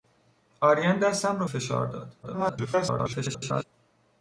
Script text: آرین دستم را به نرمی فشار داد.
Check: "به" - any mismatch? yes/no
yes